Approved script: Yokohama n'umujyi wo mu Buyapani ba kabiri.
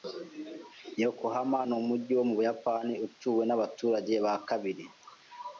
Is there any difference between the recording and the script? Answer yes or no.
yes